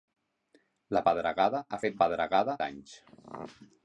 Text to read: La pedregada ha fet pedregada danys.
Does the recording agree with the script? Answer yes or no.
yes